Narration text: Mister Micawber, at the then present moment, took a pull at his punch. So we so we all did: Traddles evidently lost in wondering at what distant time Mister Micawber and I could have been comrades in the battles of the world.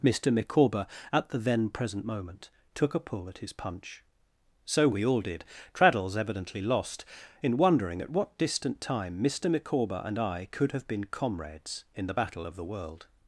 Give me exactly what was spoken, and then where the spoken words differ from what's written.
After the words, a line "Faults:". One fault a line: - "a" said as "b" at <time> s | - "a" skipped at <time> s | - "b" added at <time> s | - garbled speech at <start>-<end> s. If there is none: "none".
Mister Micawber, at the then present moment, took a pull at his punch. So we all did: Traddles evidently lost in wondering at what distant time Mister Micawber and I could have been comrades in the battle of the world.
Faults:
- "so we" skipped at 5.0 s
- "battles" said as "battle" at 12.2 s